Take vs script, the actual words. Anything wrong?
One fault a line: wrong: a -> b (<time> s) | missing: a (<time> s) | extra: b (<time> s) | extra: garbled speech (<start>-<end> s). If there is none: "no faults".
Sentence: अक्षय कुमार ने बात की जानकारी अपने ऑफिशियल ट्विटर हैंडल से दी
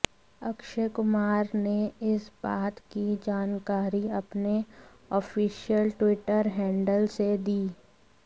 extra: इस (2.1 s)